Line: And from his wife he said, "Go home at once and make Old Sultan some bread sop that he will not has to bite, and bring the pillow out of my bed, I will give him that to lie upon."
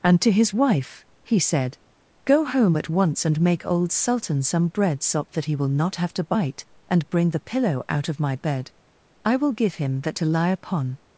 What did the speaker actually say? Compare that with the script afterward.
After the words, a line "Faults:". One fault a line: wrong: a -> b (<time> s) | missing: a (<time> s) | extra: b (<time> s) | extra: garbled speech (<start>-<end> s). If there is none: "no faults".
And to his wife he said, "Go home at once and make Old Sultan some bread sop that he will not have to bite, and bring the pillow out of my bed, I will give him that to lie upon."
Faults:
wrong: from -> to (0.2 s)
wrong: has -> have (6.0 s)